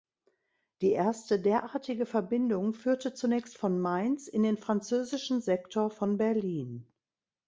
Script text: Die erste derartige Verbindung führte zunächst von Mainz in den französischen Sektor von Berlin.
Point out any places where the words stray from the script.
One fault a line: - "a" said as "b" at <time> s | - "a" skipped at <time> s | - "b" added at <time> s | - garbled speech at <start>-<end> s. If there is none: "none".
none